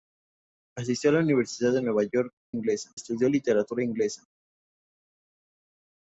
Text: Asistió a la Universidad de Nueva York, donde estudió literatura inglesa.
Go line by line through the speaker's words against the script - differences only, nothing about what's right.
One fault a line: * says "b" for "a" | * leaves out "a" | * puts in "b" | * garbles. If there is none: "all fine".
* says "inglesa" for "donde"